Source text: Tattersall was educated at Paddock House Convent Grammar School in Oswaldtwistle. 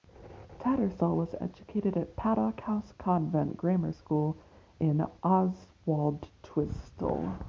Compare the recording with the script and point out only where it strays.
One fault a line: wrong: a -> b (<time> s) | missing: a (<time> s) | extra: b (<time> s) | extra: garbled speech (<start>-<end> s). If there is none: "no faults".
no faults